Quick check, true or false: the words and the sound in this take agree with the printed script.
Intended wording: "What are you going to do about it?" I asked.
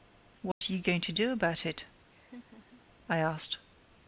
false